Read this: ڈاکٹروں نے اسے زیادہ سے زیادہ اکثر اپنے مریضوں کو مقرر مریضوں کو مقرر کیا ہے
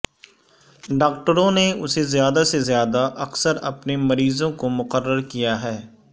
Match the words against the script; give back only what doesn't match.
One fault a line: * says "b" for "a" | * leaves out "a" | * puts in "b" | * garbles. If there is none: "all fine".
* leaves out "مریضوں کو مقرر"